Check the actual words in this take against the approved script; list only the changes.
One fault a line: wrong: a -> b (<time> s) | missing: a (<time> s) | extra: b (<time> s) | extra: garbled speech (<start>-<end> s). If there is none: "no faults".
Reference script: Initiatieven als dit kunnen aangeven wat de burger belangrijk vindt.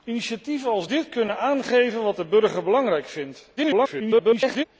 extra: garbled speech (3.6-4.6 s)